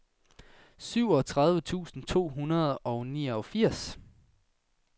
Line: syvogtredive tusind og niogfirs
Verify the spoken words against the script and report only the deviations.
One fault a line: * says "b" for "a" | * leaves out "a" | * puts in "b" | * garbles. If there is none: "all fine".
* puts in "to hundrede"